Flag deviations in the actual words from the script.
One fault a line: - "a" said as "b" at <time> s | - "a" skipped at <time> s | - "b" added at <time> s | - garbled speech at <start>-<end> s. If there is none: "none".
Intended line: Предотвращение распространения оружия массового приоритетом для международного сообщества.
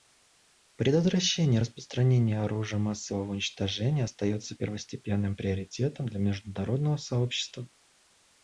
- "уничтожения остается первостепенным" added at 3.3 s